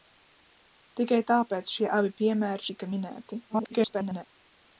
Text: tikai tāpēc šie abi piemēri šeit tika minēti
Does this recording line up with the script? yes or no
no